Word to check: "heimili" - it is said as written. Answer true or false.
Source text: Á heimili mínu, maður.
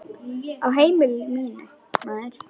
true